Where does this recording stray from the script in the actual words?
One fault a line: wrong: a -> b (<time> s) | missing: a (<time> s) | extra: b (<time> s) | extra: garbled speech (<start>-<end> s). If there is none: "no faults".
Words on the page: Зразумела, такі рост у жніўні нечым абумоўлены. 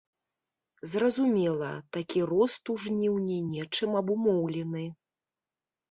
no faults